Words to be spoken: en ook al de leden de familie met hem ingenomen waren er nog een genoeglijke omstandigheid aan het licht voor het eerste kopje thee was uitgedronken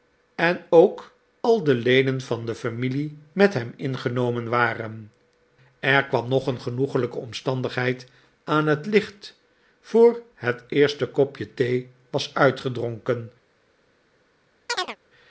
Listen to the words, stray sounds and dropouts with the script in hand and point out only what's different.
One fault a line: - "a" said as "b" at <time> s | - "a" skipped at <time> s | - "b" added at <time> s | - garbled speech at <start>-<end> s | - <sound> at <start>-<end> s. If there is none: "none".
- "van" added at 2.2 s
- "kwam" added at 6.1 s
- chirp at 14.7-15.0 s